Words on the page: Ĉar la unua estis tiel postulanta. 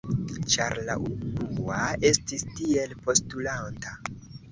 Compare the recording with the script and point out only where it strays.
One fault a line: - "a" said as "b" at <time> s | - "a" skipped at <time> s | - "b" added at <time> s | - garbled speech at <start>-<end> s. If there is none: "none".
none